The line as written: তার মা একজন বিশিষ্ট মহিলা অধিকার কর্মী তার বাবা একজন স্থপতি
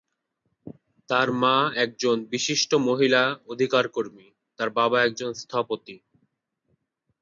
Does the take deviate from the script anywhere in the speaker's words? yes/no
no